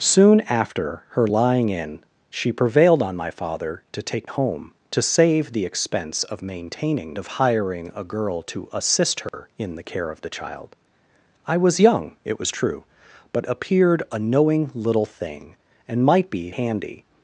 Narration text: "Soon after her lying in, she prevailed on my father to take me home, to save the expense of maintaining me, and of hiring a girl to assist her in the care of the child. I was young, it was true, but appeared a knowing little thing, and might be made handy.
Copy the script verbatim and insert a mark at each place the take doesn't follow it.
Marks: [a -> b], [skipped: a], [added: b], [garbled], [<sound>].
"Soon after her lying in, she prevailed on my father to take [skipped: me] home, to save the expense of maintaining [skipped: me, and] of hiring a girl to assist her [dropout] in the care of the child. I was young, it was true, but appeared a knowing little thing, and might be [skipped: made] handy.